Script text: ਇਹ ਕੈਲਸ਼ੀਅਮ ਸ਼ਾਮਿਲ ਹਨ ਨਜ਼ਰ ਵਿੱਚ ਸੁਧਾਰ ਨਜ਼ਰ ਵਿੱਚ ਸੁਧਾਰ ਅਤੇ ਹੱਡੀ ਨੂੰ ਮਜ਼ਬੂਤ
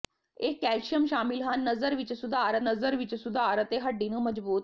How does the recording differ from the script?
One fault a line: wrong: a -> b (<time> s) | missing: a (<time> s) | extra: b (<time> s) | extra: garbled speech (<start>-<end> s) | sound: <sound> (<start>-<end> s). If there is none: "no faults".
no faults